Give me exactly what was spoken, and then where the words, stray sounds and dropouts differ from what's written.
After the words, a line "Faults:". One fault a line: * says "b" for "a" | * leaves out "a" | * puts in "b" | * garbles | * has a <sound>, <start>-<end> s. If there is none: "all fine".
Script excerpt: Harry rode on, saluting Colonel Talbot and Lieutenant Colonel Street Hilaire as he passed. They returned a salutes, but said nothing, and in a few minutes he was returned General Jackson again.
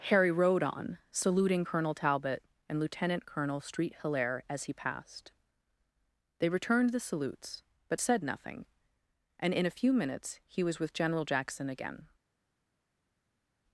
Harry rode on, saluting Colonel Talbot and Lieutenant Colonel Street Hilaire as he passed. They returned the salutes, but said nothing, and in a few minutes he was with General Jackson again.
Faults:
* says "the" for "a"
* says "with" for "returned"